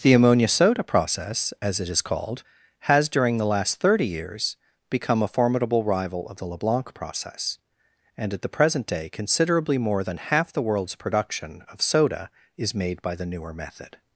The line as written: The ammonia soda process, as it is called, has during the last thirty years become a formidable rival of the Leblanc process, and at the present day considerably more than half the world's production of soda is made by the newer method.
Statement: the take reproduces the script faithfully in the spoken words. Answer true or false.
true